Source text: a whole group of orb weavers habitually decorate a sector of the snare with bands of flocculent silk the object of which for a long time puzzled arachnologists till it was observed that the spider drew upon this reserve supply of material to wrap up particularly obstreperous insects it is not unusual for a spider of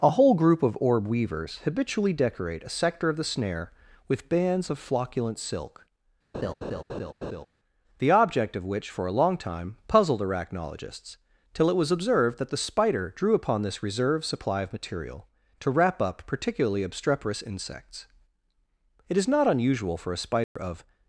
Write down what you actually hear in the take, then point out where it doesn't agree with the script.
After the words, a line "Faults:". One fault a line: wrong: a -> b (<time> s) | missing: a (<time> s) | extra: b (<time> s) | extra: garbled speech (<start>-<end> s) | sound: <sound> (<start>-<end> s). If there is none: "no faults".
a whole group of orb weavers habitually decorate a sector of the snare with bands of flocculent silk the object of which for a long time puzzled arachnologists till it was observed that the spider drew upon this reserve supply of material to wrap up particularly obstreperous insects it is not unusual for a spider of
Faults:
sound: laugh (6.3-7.5 s)
sound: dropout (20.4-20.6 s)